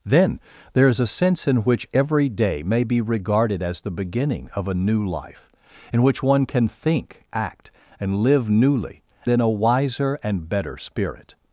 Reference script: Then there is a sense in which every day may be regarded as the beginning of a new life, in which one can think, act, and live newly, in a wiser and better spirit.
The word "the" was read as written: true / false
true